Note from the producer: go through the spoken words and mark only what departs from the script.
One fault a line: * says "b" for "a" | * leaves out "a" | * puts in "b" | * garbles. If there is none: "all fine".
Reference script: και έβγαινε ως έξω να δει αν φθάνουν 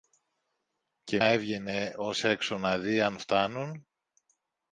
all fine